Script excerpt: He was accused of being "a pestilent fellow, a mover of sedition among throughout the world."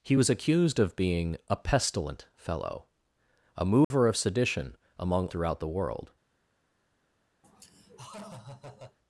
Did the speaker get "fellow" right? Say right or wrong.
right